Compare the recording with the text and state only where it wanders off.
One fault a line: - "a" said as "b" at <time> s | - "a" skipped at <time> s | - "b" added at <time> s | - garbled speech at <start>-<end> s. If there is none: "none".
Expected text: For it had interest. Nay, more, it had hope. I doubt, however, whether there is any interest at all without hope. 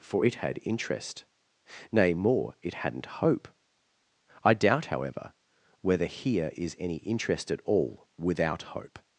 - "had" said as "hadn't" at 2.8 s
- "there" said as "here" at 6.1 s